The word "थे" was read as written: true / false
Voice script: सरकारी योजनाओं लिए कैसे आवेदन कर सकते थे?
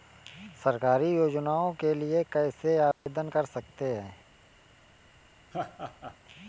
false